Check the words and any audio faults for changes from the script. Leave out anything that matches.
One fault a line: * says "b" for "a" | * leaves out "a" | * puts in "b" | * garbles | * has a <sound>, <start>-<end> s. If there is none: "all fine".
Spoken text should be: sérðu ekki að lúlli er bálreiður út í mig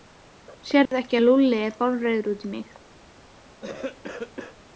* has a dropout, 0.9-0.9 s
* has a cough, 3.6-4.6 s